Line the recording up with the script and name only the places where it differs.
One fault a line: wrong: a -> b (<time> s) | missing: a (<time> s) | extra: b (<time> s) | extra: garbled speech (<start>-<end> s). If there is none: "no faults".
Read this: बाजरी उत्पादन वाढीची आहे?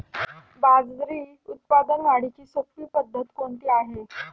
extra: सोपी पद्धत कोणती (2.5 s)